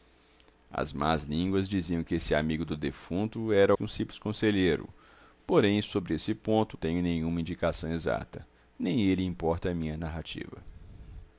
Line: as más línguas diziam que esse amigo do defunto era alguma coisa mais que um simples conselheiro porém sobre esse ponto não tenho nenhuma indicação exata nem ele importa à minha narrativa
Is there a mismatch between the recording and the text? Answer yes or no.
yes